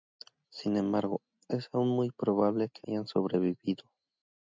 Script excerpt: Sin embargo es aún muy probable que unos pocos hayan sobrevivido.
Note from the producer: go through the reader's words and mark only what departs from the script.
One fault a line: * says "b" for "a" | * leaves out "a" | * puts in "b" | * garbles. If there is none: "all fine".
* leaves out "unos pocos"